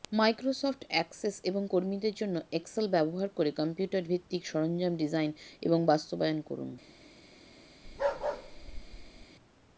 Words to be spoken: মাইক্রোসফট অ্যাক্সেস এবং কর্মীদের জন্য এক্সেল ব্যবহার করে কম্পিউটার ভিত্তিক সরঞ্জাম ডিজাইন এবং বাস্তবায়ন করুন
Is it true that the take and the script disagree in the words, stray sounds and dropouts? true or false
true